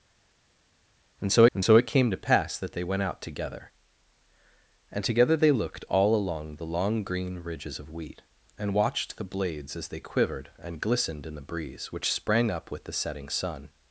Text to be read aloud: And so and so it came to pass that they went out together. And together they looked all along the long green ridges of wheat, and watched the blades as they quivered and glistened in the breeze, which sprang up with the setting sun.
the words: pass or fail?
pass